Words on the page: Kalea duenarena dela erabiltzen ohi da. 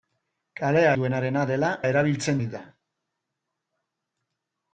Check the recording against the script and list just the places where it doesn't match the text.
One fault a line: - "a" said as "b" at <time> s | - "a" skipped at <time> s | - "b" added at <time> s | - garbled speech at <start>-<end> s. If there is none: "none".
none